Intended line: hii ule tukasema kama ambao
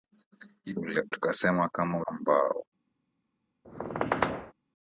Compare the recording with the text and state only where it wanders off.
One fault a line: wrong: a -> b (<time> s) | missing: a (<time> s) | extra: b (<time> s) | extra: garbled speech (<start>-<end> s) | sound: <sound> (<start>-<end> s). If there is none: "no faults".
sound: squeak (3.6-4.5 s)